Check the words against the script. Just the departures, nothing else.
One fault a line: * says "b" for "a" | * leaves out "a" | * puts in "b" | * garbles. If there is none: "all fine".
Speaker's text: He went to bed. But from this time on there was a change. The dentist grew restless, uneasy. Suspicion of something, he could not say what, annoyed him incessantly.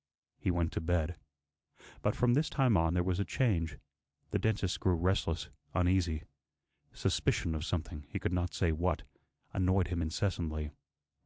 all fine